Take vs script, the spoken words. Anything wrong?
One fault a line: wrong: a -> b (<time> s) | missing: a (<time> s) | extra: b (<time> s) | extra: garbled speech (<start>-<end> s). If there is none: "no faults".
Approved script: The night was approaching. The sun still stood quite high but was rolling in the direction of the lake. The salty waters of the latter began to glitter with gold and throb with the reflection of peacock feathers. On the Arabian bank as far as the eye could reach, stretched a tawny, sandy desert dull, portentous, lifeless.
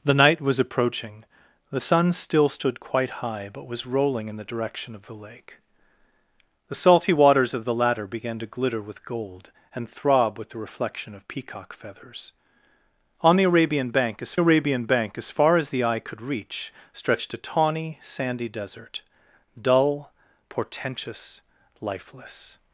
extra: Arabian bank as (14.4 s)